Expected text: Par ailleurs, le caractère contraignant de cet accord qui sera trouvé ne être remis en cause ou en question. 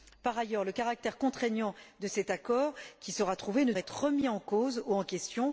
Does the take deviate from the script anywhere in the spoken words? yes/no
no